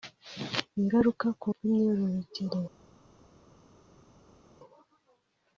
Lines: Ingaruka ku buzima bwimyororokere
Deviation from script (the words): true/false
true